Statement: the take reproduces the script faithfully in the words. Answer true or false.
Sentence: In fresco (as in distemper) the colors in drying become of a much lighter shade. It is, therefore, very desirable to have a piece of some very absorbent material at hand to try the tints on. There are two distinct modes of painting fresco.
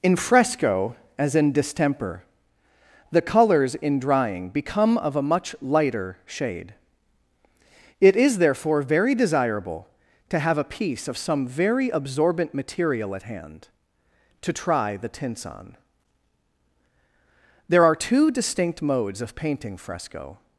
true